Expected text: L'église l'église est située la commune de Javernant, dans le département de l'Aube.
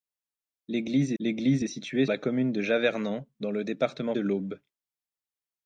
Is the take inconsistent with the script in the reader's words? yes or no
no